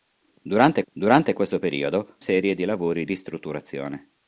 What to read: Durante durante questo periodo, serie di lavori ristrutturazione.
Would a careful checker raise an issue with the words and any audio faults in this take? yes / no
no